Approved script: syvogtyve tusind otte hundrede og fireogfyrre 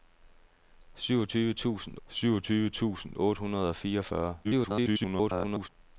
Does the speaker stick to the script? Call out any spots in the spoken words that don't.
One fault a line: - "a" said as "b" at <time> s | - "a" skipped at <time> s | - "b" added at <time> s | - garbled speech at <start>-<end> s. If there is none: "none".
- "syvogtyve tusind" added at 2.1 s
- garbled speech at 4.4-5.7 s